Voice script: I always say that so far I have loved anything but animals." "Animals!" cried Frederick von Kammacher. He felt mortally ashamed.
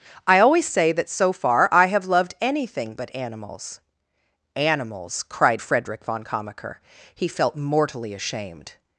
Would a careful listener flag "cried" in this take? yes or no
no